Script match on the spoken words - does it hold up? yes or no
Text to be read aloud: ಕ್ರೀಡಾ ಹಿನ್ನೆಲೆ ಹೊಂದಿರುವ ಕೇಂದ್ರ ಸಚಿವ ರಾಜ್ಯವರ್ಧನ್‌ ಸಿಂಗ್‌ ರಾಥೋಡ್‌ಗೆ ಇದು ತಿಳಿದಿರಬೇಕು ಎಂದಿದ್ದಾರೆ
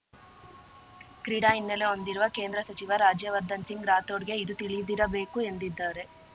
yes